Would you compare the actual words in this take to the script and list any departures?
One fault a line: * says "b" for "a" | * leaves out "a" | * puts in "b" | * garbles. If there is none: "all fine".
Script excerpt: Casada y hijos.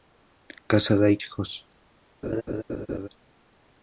all fine